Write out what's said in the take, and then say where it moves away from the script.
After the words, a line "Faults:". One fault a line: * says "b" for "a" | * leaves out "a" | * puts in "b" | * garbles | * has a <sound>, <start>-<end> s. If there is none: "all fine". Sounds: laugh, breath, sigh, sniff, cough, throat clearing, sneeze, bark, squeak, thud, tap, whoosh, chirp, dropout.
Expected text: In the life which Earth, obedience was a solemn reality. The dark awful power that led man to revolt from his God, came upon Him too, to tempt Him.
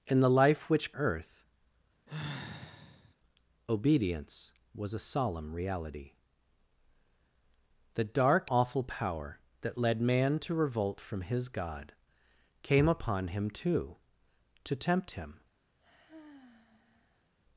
In the life which Earth, obedience was a solemn reality. The dark awful power that led man to revolt from his God, came upon Him too, to tempt Him.
Faults:
* has a sigh, 2.1-3.2 s
* has a sigh, 15.8-17.3 s